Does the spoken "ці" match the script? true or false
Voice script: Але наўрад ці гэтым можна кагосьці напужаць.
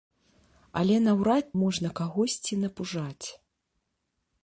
false